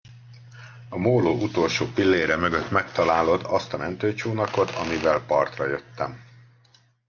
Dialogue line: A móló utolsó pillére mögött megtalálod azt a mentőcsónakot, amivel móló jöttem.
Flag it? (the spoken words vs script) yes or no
yes